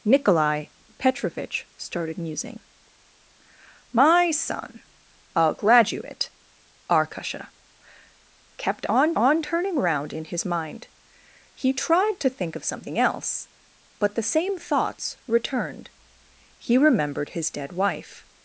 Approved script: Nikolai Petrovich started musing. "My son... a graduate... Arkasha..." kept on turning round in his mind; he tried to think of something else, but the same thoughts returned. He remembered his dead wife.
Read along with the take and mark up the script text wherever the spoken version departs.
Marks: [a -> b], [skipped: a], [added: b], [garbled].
Nikolai Petrovich started musing. "My son... a graduate... Arkasha..." kept on [added: on] turning round in his mind; he tried to think of something else, but the same thoughts returned. He remembered his dead wife.